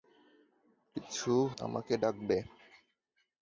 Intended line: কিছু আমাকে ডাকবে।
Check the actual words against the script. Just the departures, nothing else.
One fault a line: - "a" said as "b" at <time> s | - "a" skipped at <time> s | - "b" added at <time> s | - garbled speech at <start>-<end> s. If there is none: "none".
none